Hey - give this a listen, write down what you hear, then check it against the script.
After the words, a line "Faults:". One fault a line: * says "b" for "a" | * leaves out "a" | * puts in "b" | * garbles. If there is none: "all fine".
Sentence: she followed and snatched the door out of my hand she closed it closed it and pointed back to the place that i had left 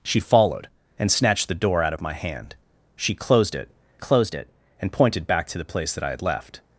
she followed and snatched the door out of my hand she closed it closed it and pointed back to the place that i had left
Faults:
all fine